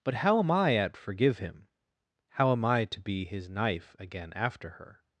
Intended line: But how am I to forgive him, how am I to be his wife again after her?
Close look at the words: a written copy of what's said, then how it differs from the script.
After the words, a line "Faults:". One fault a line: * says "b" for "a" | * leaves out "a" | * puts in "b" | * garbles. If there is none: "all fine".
But how am I at forgive him, how am I to be his knife again after her?
Faults:
* says "at" for "to"
* says "knife" for "wife"